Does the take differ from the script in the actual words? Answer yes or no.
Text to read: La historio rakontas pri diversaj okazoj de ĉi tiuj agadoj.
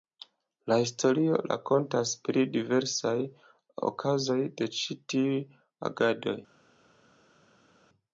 no